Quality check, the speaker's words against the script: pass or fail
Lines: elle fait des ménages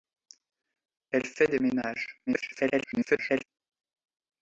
fail